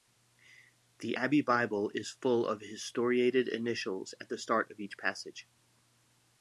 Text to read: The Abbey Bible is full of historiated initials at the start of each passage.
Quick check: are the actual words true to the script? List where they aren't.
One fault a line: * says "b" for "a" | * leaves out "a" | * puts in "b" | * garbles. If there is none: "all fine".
all fine